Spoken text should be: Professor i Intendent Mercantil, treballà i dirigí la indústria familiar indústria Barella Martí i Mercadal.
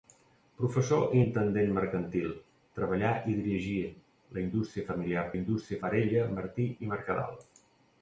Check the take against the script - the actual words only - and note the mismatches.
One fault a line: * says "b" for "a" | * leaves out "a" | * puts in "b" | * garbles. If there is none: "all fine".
all fine